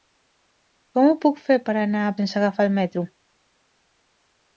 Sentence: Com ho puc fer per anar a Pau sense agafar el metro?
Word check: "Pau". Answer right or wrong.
wrong